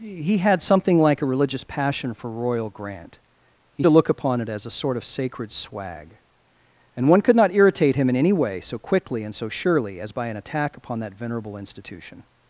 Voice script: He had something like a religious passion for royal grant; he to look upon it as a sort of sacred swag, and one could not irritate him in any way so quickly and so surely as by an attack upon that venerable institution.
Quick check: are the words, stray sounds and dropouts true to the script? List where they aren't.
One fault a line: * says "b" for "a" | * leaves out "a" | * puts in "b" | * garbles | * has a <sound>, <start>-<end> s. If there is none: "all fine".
all fine